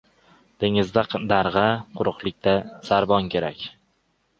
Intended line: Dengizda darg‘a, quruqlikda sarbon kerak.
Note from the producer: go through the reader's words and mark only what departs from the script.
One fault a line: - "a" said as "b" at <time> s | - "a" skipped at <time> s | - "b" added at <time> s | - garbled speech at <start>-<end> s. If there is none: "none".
none